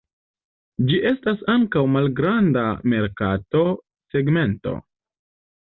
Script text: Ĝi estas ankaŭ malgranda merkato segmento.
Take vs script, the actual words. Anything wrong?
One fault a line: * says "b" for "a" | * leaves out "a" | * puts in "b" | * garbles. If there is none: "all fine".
all fine